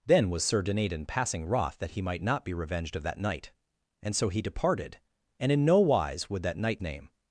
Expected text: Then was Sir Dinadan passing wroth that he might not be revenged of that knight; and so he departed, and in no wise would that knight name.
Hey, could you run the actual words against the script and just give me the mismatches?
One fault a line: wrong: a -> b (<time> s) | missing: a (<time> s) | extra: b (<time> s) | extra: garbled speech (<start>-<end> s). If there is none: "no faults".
no faults